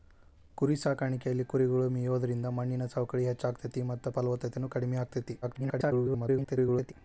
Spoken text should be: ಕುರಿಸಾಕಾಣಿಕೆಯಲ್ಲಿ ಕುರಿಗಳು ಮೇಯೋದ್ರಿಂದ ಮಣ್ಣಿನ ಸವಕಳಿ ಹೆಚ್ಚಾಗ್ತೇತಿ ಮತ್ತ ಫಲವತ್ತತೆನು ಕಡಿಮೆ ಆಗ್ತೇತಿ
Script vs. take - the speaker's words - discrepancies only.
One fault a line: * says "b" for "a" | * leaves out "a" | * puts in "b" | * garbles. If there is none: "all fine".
* garbles